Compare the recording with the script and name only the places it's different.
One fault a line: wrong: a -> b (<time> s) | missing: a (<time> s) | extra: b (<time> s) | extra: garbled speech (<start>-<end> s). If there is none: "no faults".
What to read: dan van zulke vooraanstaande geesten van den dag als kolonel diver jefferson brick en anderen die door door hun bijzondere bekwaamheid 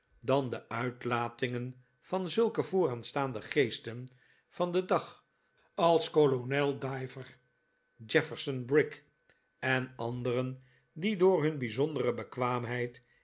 extra: de uitlatingen (0.5 s)
missing: door (11.4 s)